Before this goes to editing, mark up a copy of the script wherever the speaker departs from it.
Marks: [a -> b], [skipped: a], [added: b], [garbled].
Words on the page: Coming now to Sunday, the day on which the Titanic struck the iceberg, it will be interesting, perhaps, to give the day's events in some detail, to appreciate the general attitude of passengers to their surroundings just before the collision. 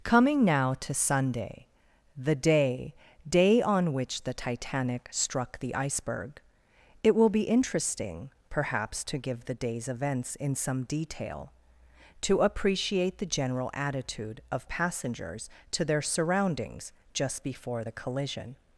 Coming now to Sunday, the day [added: day] on which the Titanic struck the iceberg, it will be interesting, perhaps, to give the day's events in some detail, to appreciate the general attitude of passengers to their surroundings just before the collision.